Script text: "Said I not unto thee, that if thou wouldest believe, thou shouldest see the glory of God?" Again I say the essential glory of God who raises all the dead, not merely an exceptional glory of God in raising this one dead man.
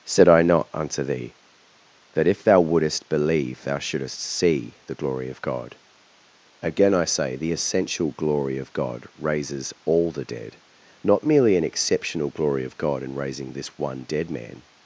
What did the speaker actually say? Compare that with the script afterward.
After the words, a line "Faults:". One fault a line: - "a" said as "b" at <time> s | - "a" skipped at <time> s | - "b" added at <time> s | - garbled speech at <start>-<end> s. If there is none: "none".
"Said I not unto thee, that if thou wouldest believe, thou shouldest see the glory of God?" Again I say the essential glory of God raises all the dead, not merely an exceptional glory of God in raising this one dead man.
Faults:
- "who" skipped at 9.1 s